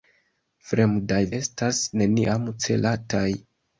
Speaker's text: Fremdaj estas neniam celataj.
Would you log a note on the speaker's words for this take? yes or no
no